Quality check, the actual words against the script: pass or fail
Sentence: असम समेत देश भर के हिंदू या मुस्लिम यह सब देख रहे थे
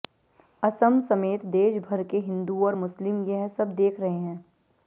fail